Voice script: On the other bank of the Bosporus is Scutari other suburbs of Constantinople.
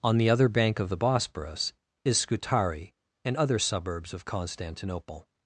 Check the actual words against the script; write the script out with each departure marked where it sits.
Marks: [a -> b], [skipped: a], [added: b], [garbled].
On the other bank of the Bosporus is Scutari [added: and] other suburbs of Constantinople.